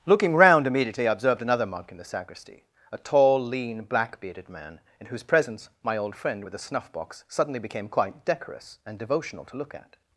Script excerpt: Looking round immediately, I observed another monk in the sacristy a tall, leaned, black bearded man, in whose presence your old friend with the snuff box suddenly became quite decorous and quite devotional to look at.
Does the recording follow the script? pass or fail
fail